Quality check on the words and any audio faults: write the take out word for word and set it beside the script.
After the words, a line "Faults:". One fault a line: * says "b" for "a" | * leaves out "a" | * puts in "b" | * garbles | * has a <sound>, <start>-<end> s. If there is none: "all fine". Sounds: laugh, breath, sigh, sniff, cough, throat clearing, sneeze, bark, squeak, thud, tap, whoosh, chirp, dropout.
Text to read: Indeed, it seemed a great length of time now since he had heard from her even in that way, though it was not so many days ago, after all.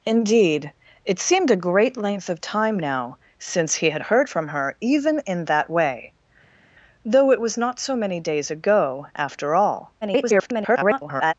Indeed, it seemed a great length of time now since he had heard from her even in that way, though it was not so many days ago, after all. [garbled]
Faults:
* garbles